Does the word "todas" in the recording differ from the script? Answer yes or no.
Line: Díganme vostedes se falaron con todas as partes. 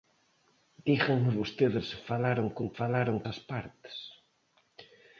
yes